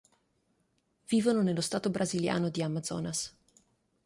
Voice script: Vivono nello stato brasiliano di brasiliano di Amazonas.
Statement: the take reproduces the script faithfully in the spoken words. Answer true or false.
false